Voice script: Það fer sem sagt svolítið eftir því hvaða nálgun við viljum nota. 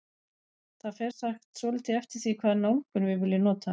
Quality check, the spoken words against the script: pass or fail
fail